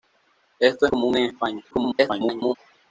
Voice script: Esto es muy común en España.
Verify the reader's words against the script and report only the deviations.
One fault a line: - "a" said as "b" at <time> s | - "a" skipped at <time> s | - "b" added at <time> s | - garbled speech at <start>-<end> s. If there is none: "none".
- "muy" skipped at 0.9 s
- garbled speech at 1.7-2.5 s